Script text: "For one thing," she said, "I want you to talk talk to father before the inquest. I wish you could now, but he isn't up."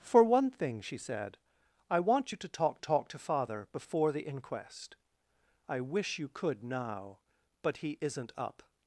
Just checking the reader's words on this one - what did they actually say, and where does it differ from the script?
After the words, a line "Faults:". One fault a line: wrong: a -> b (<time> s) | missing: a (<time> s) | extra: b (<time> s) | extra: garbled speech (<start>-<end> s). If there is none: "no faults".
"For one thing," she said, "I want you to talk talk to father before the inquest. I wish you could now, but he isn't up."
Faults:
no faults